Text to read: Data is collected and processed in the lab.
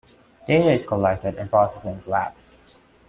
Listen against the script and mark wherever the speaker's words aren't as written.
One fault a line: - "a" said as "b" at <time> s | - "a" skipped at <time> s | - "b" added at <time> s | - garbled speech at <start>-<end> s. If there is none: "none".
none